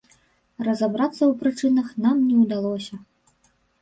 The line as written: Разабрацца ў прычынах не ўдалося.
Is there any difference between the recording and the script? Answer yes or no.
yes